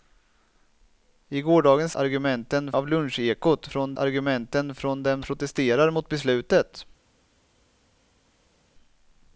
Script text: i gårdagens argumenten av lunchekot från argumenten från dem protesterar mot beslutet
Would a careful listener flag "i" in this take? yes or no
no